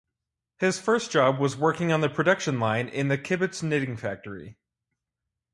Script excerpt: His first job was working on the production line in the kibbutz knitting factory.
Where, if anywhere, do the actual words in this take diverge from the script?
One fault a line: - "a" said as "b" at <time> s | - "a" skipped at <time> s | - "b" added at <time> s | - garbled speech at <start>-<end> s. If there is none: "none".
none